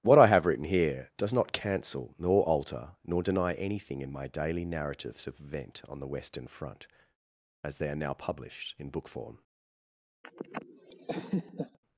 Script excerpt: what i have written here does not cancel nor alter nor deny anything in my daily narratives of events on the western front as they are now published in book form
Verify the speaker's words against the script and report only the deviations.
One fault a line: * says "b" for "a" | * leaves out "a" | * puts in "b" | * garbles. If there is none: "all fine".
* says "event" for "events"